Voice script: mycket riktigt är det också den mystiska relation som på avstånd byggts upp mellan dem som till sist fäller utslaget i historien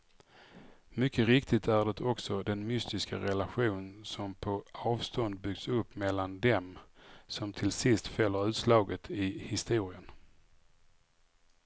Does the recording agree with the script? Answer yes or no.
yes